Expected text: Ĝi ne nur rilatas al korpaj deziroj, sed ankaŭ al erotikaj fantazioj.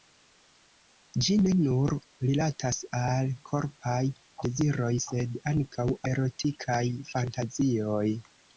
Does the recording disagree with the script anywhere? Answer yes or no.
yes